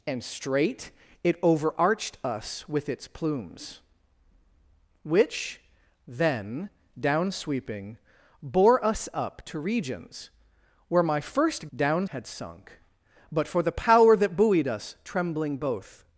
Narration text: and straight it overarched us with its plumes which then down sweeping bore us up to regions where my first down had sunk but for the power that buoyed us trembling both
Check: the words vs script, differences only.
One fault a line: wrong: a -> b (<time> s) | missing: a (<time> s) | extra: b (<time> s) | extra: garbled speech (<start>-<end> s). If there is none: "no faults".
no faults